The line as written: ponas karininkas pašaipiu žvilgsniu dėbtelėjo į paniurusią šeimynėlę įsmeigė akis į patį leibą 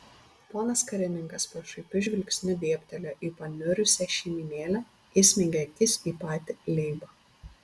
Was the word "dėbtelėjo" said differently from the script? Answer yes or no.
no